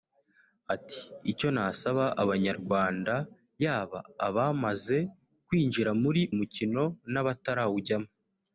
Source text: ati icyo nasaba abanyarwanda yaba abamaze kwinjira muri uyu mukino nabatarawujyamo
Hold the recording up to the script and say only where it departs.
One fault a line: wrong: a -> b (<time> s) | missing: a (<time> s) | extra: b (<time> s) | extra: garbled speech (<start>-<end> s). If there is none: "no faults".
missing: uyu (6.2 s)